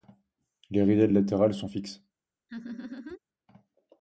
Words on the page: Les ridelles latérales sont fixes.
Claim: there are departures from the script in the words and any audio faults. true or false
true